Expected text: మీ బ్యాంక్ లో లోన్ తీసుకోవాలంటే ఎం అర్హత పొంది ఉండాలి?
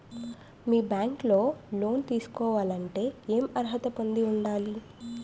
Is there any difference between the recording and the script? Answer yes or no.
no